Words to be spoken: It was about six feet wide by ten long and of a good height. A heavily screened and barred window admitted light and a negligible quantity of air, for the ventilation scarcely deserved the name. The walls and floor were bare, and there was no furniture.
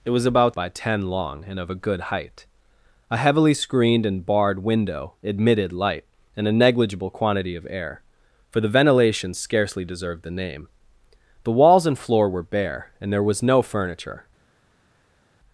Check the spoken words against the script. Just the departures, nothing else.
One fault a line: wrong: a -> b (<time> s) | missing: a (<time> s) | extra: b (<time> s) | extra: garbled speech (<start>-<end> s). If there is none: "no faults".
missing: six feet wide (0.6 s)